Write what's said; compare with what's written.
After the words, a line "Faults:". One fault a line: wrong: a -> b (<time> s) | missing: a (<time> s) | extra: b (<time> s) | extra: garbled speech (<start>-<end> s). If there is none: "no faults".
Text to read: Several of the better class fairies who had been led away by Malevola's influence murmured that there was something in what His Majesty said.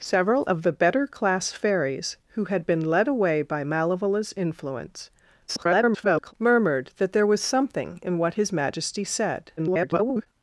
Several of the better class fairies who had been led away by Malevola's influence [garbled] murmured that there was something in what His Majesty said. [garbled]
Faults:
extra: garbled speech (5.5-6.3 s)
extra: garbled speech (9.6-10.3 s)